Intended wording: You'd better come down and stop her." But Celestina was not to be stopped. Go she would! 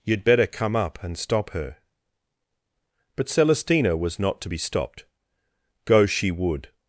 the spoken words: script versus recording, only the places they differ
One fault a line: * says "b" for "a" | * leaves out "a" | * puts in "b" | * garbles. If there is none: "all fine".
* says "up" for "down"